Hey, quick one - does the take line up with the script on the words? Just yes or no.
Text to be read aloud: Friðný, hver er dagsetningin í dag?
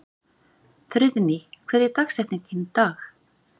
yes